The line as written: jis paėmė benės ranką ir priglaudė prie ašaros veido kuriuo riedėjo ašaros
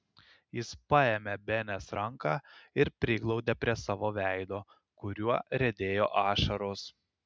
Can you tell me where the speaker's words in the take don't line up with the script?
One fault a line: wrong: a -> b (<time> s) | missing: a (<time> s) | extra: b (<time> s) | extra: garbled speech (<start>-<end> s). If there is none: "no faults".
wrong: ašaros -> savo (3.8 s)